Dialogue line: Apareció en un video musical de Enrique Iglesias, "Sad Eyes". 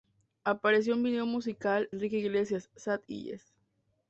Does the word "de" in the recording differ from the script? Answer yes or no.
yes